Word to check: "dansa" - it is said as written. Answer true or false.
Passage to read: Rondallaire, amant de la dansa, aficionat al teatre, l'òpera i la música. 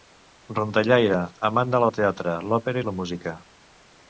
false